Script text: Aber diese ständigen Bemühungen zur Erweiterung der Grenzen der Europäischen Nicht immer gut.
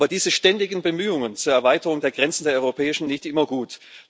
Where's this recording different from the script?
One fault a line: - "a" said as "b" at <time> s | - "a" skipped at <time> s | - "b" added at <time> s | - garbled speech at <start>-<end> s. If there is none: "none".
none